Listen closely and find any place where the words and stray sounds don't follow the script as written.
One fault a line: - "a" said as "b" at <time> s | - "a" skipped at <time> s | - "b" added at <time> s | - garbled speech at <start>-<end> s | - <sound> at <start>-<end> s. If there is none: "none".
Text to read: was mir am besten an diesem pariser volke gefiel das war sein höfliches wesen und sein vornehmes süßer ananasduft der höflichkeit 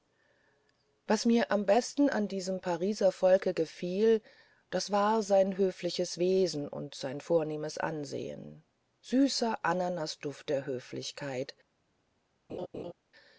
- "ansehen" added at 7.8 s
- laugh at 12.5-12.9 s